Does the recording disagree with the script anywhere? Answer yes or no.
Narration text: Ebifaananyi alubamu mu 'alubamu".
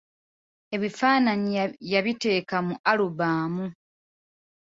yes